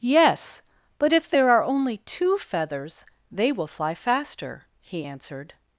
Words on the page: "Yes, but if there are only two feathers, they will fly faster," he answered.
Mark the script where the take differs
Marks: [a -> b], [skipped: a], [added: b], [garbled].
"Yes, but if there are only two feathers, they will fly faster," he answered.